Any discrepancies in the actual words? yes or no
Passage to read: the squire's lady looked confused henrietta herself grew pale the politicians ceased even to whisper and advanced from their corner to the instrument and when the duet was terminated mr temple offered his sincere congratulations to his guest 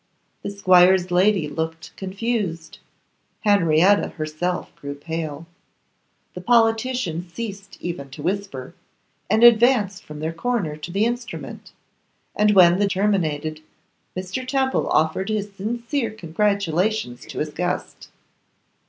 yes